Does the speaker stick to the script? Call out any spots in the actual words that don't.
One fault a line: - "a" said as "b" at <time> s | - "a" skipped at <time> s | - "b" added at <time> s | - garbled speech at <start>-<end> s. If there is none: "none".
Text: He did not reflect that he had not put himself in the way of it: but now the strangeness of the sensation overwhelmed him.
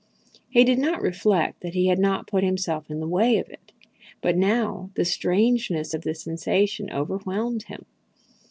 none